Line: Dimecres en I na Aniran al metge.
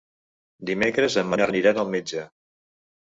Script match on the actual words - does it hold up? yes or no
yes